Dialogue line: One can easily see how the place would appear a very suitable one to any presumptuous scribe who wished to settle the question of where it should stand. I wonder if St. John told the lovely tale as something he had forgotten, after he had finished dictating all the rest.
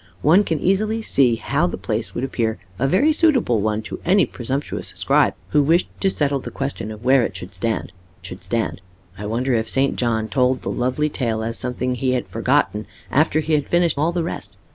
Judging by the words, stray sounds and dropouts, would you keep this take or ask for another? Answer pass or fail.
fail